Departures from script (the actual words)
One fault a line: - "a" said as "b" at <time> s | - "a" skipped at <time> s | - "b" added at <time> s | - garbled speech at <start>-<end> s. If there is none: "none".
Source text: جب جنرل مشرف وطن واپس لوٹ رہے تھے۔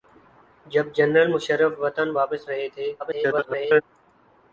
- "لوٹ" skipped at 2.5 s
- garbled speech at 3.0-3.8 s